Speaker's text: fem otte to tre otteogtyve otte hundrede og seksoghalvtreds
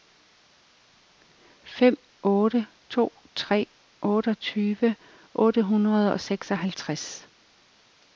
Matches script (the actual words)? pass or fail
pass